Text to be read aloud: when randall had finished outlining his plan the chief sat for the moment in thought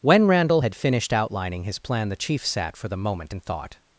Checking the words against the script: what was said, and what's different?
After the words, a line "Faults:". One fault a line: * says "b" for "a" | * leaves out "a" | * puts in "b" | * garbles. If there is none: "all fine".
when randall had finished outlining his plan the chief sat for the moment in thought
Faults:
all fine